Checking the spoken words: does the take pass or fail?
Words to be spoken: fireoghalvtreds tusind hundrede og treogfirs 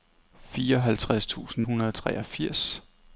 pass